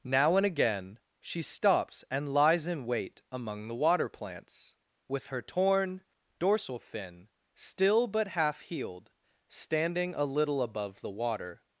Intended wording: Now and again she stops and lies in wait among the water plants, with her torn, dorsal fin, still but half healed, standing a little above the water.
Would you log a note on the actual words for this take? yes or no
no